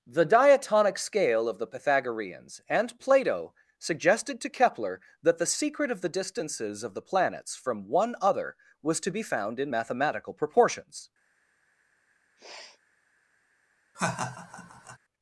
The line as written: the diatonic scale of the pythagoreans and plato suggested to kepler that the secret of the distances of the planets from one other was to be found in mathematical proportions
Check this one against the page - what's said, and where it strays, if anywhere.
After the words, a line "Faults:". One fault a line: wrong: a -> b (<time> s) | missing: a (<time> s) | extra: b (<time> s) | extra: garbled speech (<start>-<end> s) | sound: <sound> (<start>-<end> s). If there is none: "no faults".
the diatonic scale of the pythagoreans and plato suggested to kepler that the secret of the distances of the planets from one other was to be found in mathematical proportions
Faults:
sound: sniff (12.4-12.8 s)
sound: laugh (13.9-15.0 s)